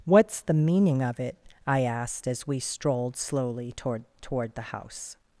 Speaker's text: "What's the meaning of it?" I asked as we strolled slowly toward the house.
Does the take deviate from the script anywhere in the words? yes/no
yes